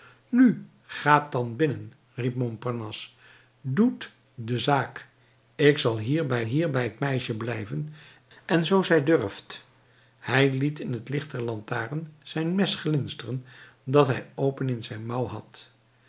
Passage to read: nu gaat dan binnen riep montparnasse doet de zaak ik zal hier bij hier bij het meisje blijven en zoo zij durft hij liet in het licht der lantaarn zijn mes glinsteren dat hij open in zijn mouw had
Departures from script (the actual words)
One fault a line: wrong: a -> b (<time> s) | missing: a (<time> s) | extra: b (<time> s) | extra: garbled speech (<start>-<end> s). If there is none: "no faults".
no faults